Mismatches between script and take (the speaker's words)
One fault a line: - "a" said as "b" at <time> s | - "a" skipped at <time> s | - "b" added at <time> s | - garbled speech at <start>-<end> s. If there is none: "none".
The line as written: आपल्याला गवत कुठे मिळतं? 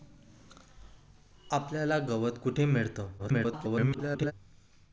- garbled speech at 3.2-4.3 s